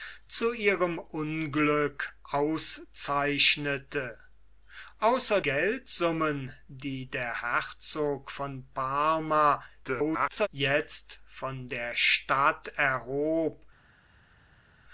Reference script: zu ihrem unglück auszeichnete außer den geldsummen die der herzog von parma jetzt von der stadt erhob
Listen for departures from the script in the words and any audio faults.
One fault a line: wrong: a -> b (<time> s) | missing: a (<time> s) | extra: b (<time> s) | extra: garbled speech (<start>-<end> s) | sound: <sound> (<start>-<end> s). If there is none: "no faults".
missing: den (5.4 s)
extra: garbled speech (9.8-10.5 s)